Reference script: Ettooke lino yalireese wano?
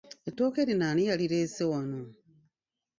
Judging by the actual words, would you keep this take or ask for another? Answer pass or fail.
fail